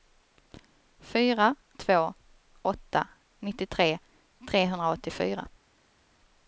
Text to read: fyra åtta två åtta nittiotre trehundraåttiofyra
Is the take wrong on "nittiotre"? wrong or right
right